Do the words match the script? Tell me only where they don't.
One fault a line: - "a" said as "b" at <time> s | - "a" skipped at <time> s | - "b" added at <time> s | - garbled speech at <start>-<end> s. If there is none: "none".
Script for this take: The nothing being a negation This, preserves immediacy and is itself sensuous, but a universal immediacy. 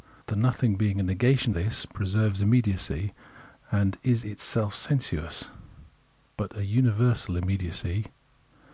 none